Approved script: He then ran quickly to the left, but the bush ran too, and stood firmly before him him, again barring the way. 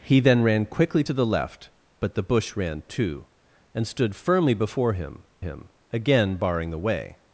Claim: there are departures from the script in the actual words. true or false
false